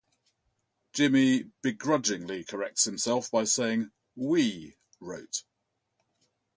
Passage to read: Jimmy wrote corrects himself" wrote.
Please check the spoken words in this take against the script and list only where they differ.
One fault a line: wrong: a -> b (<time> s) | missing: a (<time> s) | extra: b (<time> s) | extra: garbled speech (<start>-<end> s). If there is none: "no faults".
wrong: wrote -> begrudgingly (1.6 s)
extra: by saying We (3.3 s)